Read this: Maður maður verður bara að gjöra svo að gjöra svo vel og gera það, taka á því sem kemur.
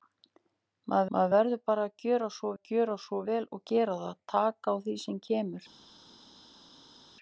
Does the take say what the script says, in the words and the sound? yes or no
yes